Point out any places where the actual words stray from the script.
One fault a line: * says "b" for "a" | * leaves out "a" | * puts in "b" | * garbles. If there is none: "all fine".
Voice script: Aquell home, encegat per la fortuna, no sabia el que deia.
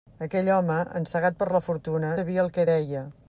* leaves out "no"